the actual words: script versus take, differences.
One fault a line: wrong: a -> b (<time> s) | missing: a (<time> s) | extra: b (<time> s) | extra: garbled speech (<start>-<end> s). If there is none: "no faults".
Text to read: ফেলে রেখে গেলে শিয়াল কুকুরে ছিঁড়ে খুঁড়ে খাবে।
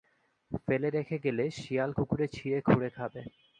no faults